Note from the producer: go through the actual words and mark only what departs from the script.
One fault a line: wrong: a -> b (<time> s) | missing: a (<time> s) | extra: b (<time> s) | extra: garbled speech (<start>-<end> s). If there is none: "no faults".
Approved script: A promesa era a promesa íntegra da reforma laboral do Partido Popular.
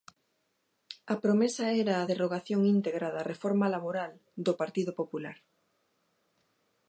wrong: promesa -> derrogación (2.1 s)